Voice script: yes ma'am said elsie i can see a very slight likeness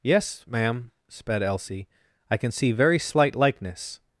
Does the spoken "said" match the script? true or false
false